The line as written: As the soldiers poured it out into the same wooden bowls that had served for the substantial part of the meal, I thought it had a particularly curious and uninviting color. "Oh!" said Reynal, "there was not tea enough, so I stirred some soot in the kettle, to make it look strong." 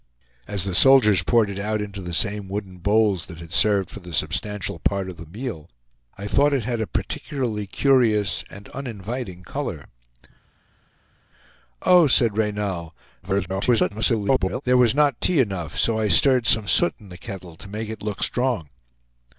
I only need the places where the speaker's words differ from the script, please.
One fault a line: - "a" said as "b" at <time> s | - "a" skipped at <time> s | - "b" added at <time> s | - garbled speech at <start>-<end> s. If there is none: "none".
- garbled speech at 13.2-14.6 s